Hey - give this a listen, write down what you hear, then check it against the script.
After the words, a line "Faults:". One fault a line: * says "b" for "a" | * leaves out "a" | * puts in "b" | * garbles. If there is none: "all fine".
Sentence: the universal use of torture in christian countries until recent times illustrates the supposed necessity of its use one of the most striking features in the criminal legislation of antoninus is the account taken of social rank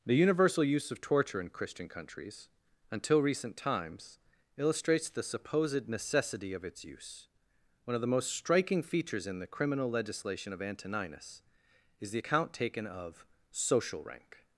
the universal use of torture in christian countries until recent times illustrates the supposed necessity of its use one of the most striking features in the criminal legislation of antoninus is the account taken of social rank
Faults:
all fine